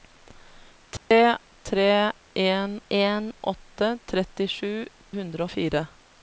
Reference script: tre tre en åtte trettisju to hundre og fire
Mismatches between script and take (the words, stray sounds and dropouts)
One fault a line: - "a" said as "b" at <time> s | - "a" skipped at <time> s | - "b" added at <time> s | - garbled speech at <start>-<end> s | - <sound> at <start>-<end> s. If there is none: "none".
- dropout at 1.0-1.1 s
- "en" added at 2.9 s
- "to" skipped at 4.7 s